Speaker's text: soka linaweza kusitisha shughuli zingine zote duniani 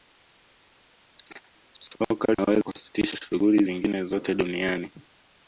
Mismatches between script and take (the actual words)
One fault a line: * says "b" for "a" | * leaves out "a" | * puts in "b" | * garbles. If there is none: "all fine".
all fine